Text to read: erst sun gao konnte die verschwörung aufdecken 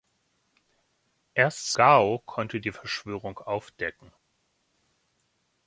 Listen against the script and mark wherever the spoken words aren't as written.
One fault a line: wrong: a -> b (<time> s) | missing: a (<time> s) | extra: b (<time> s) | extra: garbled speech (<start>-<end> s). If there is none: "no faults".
missing: sun (1.7 s)